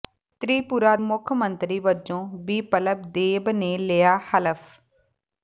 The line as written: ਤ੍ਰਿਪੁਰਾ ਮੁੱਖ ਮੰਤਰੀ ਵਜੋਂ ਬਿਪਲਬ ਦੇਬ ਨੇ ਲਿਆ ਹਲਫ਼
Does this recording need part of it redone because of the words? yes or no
no